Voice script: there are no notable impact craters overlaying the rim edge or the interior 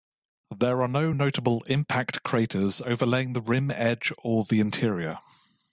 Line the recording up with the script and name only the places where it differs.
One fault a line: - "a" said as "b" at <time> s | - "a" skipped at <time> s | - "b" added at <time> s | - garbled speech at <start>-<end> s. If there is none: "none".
none